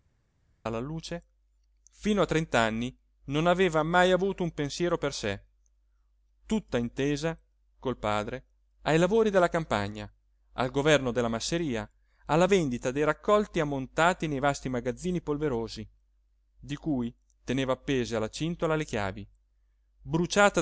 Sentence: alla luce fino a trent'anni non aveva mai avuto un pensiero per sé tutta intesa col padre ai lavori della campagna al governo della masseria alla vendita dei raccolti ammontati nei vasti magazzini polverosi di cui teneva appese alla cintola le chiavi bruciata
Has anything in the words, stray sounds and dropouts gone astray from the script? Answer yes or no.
no